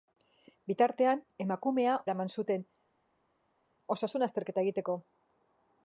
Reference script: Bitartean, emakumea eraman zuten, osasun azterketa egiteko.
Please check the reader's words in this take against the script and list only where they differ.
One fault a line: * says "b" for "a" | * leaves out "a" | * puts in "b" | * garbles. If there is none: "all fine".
all fine